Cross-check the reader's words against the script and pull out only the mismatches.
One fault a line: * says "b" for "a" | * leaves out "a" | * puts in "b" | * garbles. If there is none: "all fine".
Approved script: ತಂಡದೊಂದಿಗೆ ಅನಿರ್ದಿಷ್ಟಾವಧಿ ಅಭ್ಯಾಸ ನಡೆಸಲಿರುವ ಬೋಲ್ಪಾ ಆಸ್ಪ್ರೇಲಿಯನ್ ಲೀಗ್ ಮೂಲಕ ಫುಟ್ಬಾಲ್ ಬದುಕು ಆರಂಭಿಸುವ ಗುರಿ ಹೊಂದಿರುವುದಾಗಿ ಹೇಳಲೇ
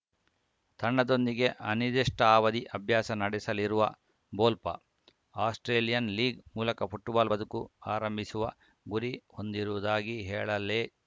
all fine